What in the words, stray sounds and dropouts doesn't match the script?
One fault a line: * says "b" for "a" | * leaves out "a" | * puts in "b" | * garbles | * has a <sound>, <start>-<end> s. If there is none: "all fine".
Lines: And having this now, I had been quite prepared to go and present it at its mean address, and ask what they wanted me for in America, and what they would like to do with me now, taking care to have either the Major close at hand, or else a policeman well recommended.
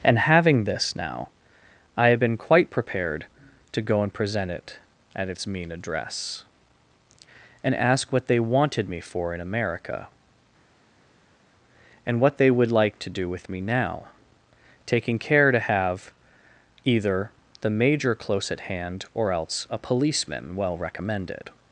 * says "have" for "had"